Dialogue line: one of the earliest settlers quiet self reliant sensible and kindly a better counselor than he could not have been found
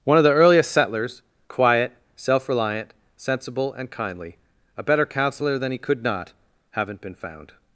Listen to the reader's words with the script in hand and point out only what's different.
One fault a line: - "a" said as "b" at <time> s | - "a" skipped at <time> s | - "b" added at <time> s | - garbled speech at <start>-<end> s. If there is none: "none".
- "have" said as "haven't" at 6.7 s